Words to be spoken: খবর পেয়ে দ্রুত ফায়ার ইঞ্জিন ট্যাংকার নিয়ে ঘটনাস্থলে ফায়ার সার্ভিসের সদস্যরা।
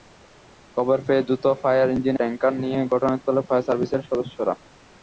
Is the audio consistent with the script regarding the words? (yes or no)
yes